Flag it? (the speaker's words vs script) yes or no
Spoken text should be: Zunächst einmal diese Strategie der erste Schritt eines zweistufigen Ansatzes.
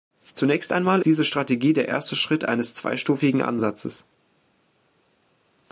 no